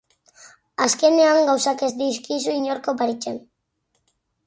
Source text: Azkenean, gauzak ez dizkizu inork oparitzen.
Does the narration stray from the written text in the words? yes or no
no